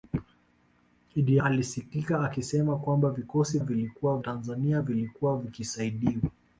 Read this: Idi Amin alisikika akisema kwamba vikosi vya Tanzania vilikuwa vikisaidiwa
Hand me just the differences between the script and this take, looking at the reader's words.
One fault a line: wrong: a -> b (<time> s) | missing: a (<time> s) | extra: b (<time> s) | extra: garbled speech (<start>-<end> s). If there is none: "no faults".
missing: Amin (1.4 s)
wrong: vya -> vilikuwa (3.6 s)